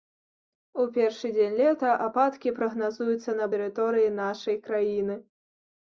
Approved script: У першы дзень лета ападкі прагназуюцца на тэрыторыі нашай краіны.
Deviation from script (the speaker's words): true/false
false